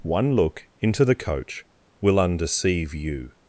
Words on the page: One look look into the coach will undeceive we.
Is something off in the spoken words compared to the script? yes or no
yes